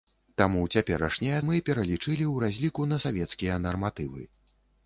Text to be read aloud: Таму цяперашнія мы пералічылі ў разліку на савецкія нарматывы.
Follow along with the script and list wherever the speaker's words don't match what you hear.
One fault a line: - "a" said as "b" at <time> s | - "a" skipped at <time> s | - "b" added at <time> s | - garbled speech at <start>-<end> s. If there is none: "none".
none